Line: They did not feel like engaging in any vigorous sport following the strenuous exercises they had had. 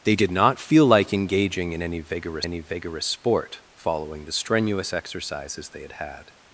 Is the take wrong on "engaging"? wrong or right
right